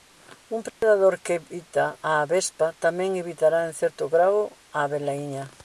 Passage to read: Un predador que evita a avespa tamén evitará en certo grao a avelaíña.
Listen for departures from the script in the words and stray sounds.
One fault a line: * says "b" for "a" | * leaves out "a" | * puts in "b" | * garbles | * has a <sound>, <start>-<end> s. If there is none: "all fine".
* has a dropout, 0.7-0.8 s